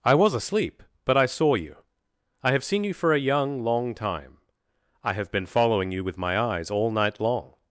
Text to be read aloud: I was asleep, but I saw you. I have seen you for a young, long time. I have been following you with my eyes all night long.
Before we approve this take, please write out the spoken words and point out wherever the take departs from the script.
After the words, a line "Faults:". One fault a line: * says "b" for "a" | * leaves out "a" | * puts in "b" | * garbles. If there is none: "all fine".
I was asleep, but I saw you. I have seen you for a young, long time. I have been following you with my eyes all night long.
Faults:
all fine